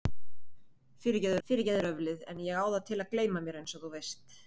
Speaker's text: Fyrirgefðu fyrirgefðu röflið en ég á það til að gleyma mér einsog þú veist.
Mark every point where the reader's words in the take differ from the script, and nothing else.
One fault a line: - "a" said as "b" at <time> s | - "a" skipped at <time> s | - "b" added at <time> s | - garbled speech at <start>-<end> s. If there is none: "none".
none